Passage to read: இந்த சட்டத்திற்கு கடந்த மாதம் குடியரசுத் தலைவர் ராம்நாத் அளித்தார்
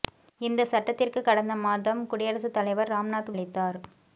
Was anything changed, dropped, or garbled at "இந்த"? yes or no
no